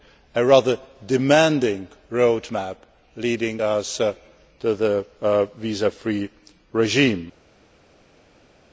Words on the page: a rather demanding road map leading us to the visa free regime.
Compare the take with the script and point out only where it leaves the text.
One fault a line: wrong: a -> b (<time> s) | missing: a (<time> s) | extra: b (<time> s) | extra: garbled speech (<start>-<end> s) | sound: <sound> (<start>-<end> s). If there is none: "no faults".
no faults